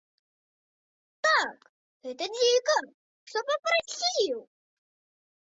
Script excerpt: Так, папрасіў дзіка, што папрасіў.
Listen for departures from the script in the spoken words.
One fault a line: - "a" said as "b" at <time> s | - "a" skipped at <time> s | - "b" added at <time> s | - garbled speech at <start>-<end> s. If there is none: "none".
- "папрасіў" said as "гэта" at 2.1 s